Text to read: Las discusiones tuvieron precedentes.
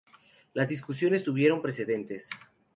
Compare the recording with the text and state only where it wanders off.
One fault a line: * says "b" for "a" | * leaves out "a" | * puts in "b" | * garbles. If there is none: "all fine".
all fine